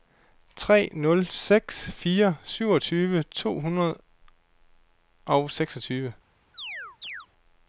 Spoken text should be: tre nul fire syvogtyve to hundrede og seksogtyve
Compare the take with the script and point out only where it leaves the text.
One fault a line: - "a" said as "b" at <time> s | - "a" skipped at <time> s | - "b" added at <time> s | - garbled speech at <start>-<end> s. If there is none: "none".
- "seks" added at 1.3 s